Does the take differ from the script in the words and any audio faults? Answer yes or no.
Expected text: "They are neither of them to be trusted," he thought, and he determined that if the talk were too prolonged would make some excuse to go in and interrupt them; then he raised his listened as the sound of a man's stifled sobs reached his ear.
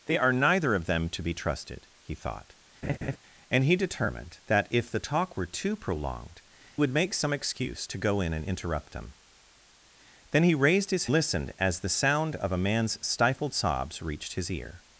yes